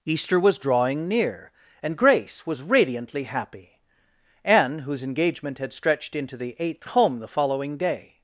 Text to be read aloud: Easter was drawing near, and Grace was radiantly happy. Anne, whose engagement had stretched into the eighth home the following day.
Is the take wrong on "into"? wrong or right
right